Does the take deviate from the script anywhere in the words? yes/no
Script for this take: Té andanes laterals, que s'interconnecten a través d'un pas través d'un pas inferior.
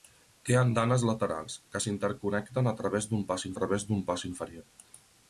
no